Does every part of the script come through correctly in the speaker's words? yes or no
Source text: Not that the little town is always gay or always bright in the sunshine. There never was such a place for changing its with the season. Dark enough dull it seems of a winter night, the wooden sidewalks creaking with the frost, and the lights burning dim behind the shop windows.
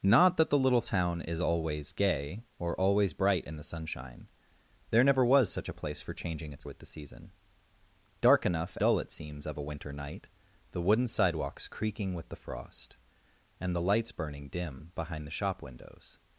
yes